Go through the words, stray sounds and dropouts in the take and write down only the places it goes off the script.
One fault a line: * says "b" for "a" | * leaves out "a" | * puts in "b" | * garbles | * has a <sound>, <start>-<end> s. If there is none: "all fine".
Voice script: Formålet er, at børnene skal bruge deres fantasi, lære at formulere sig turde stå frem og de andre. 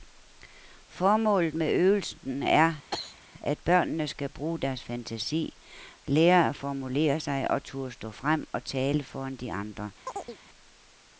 * puts in "med øvelsen"
* has a cough, 2.9-3.2 s
* puts in "og"
* puts in "tale foran"
* has a chirp, 10.1-10.4 s